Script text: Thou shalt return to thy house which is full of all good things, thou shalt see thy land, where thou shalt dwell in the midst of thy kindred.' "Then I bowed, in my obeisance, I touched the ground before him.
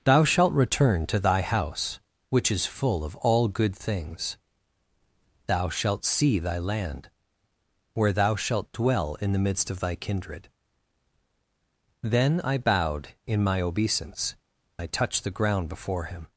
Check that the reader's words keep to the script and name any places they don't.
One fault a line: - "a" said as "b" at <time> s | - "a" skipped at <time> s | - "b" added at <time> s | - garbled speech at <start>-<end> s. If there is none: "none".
none